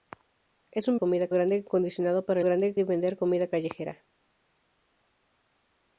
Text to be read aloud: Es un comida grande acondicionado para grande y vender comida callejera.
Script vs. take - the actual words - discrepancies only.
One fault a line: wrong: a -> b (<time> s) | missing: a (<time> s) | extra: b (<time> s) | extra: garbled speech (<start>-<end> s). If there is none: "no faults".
no faults